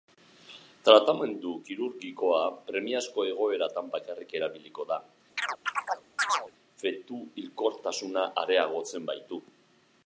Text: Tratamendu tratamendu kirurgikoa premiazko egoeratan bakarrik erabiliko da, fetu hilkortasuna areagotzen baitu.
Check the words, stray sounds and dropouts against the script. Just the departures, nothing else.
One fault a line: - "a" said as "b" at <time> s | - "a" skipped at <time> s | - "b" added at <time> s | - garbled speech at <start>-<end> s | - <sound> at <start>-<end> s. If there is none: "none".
- "tratamendu" skipped at 1.5 s
- chirp at 5.4-6.5 s